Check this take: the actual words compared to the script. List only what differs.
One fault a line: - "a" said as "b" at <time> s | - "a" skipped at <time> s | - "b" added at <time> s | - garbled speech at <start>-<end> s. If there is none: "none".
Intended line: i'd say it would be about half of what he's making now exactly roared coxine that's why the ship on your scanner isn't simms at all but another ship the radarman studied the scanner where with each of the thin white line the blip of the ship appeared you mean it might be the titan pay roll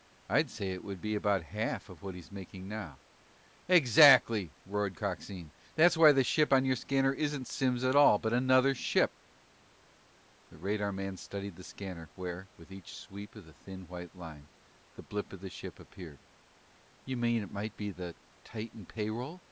- "sweep" added at 13.0 s